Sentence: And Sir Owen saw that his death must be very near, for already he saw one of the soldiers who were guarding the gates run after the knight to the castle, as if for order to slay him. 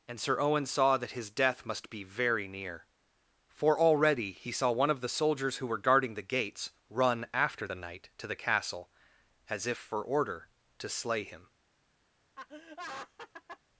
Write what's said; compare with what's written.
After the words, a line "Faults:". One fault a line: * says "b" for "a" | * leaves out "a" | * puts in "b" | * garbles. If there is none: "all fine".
And Sir Owen saw that his death must be very near, for already he saw one of the soldiers who were guarding the gates run after the knight to the castle, as if for order to slay him.
Faults:
all fine